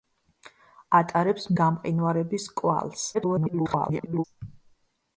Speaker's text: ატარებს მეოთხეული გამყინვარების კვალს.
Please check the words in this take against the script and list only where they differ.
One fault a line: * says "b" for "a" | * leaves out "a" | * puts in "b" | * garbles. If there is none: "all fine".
* leaves out "მეოთხეული"
* garbles